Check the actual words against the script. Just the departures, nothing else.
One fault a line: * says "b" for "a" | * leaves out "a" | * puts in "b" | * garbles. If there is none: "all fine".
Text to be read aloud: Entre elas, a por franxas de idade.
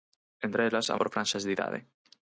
all fine